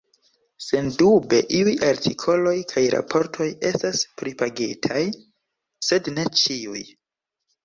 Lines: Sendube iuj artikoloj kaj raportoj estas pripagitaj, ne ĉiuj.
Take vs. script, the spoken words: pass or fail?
fail